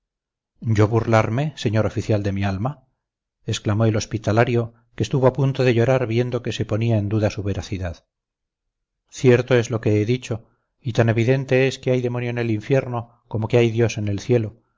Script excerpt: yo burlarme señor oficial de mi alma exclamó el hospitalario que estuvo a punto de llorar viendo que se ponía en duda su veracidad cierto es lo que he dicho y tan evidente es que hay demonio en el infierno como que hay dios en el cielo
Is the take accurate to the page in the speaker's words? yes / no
yes